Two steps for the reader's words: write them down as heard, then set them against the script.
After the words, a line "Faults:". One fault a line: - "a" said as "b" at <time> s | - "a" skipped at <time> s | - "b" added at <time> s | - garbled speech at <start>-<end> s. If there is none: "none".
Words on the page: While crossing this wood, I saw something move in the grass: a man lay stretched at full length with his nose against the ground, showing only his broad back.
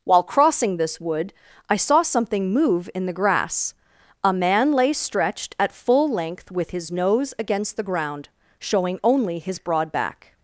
While crossing this wood, I saw something move in the grass: a man lay stretched at full length with his nose against the ground, showing only his broad back.
Faults:
none